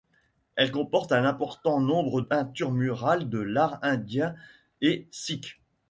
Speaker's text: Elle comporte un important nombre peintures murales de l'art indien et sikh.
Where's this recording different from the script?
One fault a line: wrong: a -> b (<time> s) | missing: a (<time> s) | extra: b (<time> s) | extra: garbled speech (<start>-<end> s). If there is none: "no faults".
no faults